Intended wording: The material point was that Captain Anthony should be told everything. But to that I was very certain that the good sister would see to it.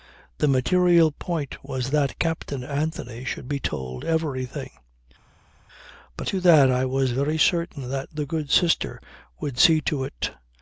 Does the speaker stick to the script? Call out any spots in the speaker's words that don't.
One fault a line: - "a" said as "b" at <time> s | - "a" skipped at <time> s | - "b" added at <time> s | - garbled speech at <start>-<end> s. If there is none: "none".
none